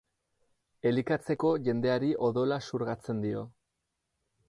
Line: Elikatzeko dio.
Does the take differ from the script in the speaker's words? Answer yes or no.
yes